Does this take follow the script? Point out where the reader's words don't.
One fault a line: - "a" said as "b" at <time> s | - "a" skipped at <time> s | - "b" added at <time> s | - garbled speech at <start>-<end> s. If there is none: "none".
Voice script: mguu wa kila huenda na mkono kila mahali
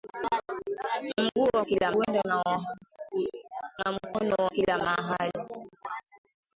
none